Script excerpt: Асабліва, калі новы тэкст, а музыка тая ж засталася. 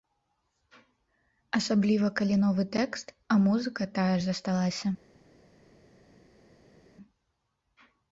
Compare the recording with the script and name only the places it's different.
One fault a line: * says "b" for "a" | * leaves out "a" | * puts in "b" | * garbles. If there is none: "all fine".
all fine